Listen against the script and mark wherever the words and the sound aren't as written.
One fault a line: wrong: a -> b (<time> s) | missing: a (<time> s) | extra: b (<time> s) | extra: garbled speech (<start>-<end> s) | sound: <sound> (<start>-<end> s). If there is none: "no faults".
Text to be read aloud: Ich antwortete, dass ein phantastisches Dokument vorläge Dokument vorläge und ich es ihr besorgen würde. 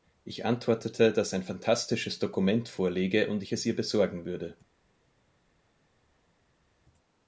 missing: Dokument vorläge (3.3 s)